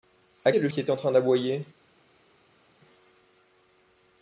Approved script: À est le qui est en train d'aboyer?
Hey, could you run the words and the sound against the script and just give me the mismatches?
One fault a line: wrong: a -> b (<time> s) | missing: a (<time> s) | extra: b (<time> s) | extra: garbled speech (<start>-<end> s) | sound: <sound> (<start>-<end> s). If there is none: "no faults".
no faults